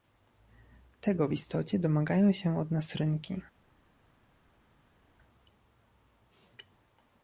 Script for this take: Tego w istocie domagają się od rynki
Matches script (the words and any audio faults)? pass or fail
fail